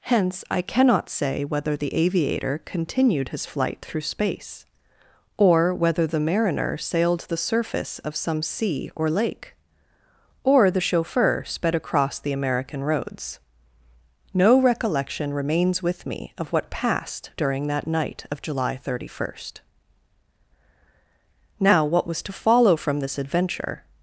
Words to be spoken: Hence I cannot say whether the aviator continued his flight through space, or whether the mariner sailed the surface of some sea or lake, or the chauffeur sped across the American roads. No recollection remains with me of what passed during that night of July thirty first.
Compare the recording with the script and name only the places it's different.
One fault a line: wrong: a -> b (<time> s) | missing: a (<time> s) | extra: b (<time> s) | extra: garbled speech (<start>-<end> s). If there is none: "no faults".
extra: Now what was to follow from this adventure (21.6 s)